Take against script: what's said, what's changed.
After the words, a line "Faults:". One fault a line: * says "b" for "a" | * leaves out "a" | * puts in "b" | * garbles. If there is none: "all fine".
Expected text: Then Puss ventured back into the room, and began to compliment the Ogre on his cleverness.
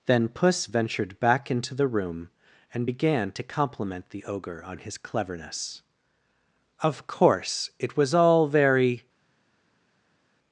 Then Puss ventured back into the room, and began to compliment the Ogre on his cleverness. "Of course, it was all very
Faults:
* puts in "Of course it was all very"